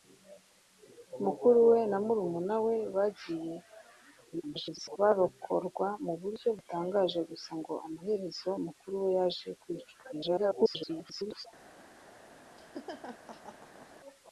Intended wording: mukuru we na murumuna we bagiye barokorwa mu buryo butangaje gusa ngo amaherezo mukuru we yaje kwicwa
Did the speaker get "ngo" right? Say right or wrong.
right